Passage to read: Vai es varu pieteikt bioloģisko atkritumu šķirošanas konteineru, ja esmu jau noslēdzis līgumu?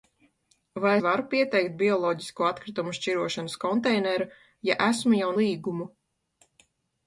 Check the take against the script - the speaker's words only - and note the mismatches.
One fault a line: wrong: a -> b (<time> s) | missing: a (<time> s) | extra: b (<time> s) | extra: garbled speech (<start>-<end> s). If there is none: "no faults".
missing: es (0.9 s)
missing: noslēdzis (5.3 s)